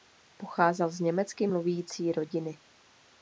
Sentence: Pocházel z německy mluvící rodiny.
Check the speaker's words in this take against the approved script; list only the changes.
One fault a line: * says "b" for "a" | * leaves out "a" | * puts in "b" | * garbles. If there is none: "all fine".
all fine